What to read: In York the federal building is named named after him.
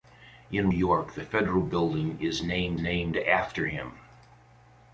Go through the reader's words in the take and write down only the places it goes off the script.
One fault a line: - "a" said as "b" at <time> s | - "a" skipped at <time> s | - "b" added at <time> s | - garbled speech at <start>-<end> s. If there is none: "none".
none